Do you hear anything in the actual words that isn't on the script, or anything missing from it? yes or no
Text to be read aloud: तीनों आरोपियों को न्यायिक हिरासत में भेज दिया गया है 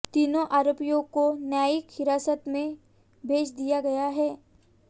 no